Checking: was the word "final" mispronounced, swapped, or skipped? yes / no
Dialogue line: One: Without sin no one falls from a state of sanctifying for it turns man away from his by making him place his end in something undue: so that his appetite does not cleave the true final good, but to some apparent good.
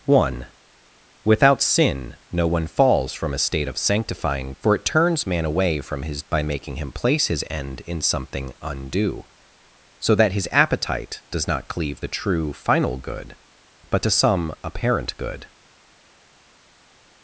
no